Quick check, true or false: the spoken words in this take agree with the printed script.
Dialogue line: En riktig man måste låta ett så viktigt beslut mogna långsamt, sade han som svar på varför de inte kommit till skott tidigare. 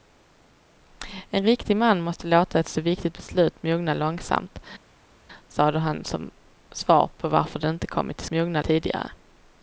false